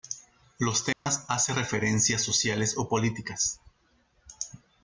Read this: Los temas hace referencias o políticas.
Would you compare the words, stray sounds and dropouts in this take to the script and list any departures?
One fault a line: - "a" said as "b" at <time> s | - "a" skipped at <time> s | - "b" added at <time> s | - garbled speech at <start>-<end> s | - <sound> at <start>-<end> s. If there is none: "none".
- dropout at 0.9-1.1 s
- "sociales" added at 2.2 s